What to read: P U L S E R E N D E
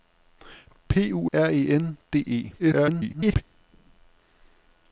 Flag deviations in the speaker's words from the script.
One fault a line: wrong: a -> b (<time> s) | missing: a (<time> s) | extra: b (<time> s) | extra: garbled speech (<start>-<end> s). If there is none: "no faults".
missing: L S E (1.3 s)
extra: garbled speech (2.6-3.4 s)